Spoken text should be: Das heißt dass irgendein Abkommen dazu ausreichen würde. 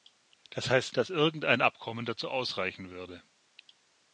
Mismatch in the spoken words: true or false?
false